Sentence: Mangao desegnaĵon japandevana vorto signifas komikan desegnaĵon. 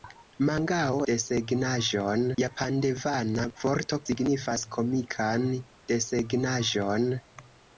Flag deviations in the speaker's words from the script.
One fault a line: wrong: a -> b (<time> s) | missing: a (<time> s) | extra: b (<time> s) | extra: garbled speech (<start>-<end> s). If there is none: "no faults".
no faults